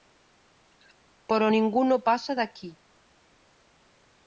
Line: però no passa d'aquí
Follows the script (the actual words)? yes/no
no